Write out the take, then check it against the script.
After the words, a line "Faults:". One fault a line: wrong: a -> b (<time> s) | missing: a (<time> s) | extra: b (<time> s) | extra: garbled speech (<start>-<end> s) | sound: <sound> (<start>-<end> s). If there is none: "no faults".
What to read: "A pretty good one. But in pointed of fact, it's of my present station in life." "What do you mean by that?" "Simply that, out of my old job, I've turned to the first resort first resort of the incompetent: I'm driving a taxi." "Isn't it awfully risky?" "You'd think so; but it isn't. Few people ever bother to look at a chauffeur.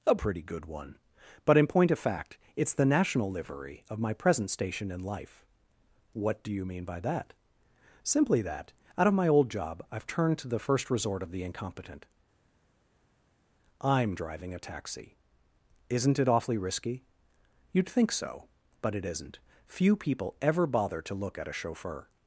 "A pretty good one. But in point of fact, it's the national livery of my present station in life." "What do you mean by that?" "Simply that, out of my old job, I've turned to the first resort of the incompetent: I'm driving a taxi." "Isn't it awfully risky?" "You'd think so; but it isn't. Few people ever bother to look at a chauffeur.
Faults:
wrong: pointed -> point (1.7 s)
extra: the national livery (2.7 s)
missing: first resort (11.2 s)